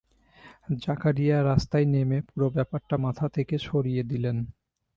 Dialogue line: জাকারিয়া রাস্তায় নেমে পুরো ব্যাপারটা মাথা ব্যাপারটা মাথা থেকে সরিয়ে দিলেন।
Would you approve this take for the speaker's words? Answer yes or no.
no